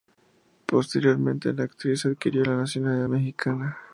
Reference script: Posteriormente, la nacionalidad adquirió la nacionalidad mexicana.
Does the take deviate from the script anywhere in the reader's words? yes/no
yes